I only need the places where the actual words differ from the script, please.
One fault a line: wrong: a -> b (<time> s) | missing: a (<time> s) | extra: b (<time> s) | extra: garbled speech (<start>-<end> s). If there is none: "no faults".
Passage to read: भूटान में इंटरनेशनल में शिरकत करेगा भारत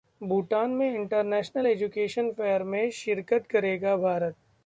extra: एजुकेशन फेयर (1.6 s)